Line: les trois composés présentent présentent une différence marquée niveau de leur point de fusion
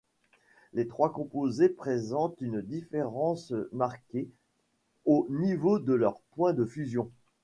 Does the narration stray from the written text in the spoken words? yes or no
yes